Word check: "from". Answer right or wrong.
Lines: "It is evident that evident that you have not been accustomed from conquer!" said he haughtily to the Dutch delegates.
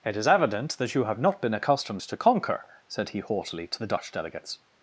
wrong